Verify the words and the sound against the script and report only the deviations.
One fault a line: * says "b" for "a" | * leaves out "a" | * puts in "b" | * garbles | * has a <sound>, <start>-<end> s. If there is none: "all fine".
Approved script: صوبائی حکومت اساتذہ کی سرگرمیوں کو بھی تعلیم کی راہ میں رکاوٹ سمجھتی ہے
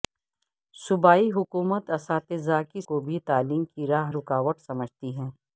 * leaves out "سرگرمیوں"
* leaves out "میں"